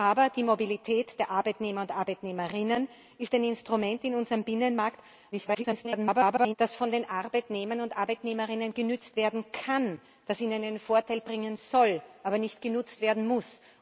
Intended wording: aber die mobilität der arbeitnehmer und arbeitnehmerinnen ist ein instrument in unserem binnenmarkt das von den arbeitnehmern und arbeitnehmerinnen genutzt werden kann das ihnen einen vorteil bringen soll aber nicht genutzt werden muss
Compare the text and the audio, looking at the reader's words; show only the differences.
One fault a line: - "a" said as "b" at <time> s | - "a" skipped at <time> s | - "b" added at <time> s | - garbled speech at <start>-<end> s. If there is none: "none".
- garbled speech at 5.3-6.5 s